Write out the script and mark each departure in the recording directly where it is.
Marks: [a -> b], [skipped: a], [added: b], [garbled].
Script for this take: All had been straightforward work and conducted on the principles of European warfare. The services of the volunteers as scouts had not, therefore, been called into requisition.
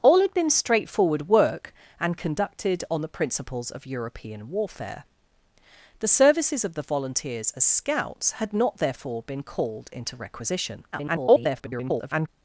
All had been straightforward work and conducted on the principles of European warfare. The services of the volunteers as scouts had not, therefore, been called into requisition. [garbled]